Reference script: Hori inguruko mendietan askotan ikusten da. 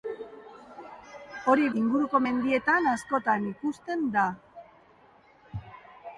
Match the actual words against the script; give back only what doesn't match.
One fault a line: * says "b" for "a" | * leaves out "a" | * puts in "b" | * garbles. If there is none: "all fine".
all fine